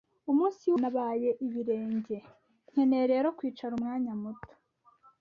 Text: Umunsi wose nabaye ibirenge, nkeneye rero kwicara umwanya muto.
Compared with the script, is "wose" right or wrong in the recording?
wrong